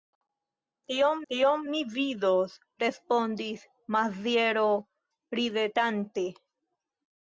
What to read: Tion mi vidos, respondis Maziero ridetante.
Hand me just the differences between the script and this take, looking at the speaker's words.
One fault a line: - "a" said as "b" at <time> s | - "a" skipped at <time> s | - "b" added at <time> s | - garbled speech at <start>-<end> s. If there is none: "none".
- "tion" added at 1.3 s